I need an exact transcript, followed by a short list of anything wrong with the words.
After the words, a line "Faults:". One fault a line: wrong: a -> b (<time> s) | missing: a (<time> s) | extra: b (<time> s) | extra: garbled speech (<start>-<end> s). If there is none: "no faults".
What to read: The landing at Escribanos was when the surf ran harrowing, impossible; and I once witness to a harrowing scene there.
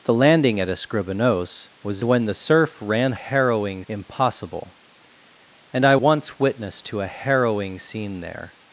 The landing at Escribanos was when the surf ran harrowing, impossible; and I once witness to a harrowing scene there.
Faults:
no faults